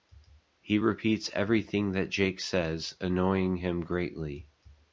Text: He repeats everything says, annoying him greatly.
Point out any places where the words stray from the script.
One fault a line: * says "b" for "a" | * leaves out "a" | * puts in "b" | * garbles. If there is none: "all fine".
* puts in "that Jake"